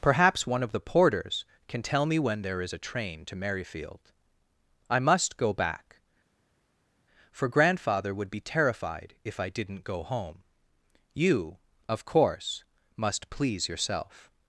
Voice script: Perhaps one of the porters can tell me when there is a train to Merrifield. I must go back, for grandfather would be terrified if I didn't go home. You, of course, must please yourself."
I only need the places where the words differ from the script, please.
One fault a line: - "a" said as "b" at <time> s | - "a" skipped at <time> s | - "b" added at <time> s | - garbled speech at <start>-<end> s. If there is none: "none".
none